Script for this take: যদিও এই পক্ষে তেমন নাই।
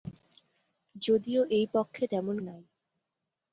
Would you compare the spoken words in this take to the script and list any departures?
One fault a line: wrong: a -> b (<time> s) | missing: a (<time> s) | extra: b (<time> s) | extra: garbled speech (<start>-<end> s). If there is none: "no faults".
no faults